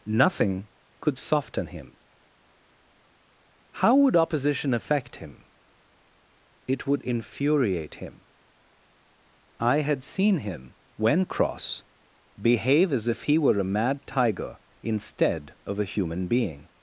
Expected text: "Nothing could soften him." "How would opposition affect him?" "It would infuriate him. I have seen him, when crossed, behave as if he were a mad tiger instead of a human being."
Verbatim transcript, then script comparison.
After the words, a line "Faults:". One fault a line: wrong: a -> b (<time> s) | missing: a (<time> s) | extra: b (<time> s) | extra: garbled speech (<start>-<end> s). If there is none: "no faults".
"Nothing could soften him." "How would opposition affect him?" "It would infuriate him. I had seen him, when cross, behave as if he were a mad tiger instead of a human being."
Faults:
wrong: have -> had (9.8 s)
wrong: crossed -> cross (11.2 s)